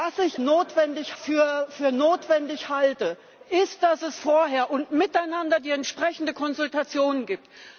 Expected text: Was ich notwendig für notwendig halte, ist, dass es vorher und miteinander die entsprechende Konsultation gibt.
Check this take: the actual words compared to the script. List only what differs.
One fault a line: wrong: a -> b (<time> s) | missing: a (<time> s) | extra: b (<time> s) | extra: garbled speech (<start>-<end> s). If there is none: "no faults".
no faults